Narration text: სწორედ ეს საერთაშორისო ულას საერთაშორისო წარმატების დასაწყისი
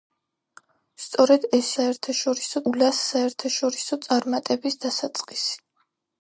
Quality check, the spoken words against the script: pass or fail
pass